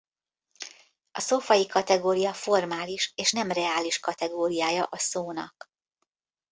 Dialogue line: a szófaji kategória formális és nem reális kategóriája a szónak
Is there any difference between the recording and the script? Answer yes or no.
no